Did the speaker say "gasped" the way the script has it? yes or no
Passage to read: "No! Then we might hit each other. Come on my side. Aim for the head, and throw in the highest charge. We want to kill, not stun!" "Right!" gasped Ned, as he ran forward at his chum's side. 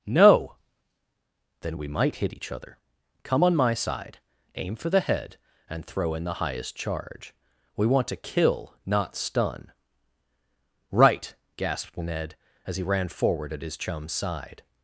yes